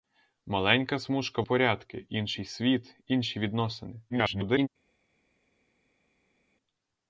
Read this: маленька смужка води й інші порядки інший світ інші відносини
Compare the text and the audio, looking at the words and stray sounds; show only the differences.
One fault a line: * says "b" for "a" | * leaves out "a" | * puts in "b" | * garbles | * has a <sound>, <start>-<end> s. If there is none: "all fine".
* leaves out "води й інші"
* garbles